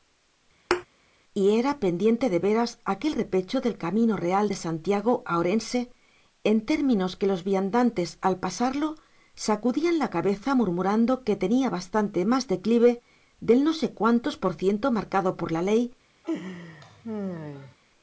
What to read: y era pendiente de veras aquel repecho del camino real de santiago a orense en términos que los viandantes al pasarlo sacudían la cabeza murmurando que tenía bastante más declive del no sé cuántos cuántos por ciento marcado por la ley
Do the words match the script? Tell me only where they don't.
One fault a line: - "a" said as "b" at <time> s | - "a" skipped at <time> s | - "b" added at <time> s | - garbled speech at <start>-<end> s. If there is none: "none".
- "cuántos" skipped at 14.4 s